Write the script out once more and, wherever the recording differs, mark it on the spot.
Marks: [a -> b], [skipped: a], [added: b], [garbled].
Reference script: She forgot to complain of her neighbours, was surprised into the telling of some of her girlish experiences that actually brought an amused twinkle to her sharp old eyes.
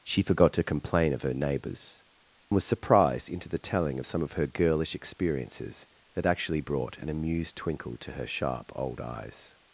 She forgot to complain of her neighbours, was surprised into the telling of some of her girlish experiences that actually brought an amused twinkle to her sharp old eyes.